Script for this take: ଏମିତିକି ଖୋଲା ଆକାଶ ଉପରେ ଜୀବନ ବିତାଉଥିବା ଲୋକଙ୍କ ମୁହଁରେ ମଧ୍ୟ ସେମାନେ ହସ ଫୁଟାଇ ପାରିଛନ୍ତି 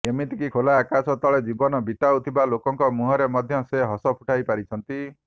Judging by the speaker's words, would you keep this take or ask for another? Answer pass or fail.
fail